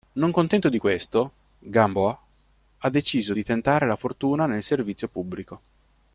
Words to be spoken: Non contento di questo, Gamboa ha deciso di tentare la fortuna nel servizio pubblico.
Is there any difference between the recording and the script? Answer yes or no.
no